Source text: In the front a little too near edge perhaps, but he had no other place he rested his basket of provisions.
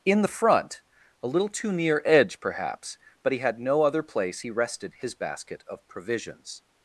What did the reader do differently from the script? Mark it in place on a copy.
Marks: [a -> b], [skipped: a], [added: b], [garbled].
In the front a little too near edge perhaps, but he had no other place he rested his basket of provisions.